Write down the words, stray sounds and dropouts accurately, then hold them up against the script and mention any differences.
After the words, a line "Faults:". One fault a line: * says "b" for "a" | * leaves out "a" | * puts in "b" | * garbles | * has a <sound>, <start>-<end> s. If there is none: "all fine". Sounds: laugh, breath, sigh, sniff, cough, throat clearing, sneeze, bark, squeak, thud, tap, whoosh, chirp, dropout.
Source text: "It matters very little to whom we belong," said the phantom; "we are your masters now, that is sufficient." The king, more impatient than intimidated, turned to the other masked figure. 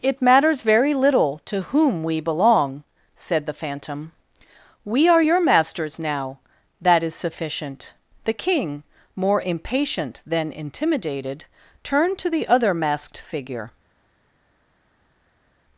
"It matters very little to whom we belong," said the phantom; "we are your masters now, that is sufficient." The king, more impatient than intimidated, turned to the other masked figure.
Faults:
all fine